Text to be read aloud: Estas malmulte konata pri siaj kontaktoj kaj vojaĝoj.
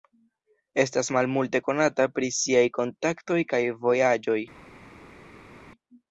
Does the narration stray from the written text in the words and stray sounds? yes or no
no